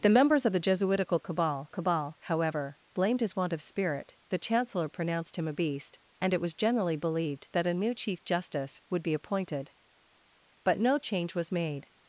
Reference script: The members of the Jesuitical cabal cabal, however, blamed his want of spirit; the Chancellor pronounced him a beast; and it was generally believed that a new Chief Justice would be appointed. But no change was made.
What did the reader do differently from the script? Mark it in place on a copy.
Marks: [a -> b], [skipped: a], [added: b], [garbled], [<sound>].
The members of the Jesuitical cabal cabal, however, blamed his want of spirit; the Chancellor pronounced him a beast; and it was generally believed that a new Chief Justice would be appointed. But no change was made.